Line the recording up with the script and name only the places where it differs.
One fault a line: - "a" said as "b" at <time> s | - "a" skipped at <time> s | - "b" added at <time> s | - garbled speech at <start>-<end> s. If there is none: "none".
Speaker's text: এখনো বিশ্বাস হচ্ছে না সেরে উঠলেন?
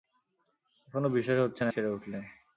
none